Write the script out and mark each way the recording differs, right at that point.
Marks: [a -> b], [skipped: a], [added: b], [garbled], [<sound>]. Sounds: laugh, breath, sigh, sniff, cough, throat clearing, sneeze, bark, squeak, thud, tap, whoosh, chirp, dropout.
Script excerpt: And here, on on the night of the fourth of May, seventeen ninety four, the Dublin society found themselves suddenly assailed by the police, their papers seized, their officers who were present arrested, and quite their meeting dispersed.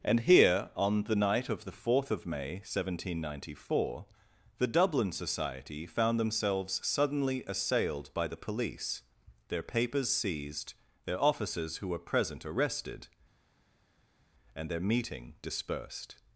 And here, on [skipped: on] the night of the fourth of May, seventeen ninety four, the Dublin society found themselves suddenly assailed by the police, their papers seized, their officers who were present arrested, and [skipped: quite] their meeting dispersed.